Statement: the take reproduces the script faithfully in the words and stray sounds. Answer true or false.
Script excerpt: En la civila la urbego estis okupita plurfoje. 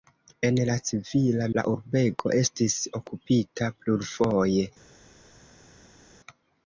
true